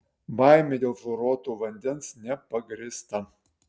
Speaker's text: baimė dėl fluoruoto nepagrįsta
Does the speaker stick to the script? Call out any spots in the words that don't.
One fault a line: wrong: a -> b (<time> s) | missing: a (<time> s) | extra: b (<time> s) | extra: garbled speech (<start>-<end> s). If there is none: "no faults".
extra: vandens (1.7 s)